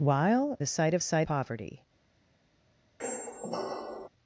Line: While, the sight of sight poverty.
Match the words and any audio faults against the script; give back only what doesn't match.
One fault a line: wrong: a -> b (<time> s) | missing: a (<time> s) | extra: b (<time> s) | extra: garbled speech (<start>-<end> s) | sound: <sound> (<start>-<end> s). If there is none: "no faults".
sound: squeak (3.0-4.1 s)